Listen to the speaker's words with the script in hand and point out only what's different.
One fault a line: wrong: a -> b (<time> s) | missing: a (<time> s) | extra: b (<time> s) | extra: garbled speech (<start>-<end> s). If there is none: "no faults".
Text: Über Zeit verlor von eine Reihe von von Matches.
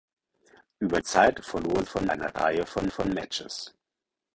no faults